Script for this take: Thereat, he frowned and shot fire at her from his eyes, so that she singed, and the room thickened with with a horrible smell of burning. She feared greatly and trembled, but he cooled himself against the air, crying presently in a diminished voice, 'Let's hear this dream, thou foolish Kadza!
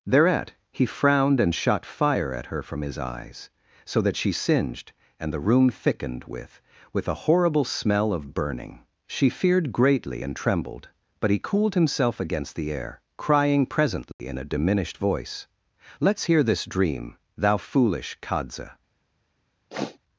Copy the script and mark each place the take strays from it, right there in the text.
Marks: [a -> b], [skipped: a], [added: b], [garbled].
Thereat, he frowned and shot fire at her from his eyes, so that she singed, and the room thickened with with a horrible smell of burning. She feared greatly and trembled, but he cooled himself against the air, crying presently in a diminished voice, 'Let's hear this dream, thou foolish Kadza!